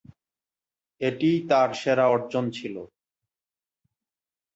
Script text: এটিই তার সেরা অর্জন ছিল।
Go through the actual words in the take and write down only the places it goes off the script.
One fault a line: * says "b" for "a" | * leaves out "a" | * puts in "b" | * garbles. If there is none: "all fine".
all fine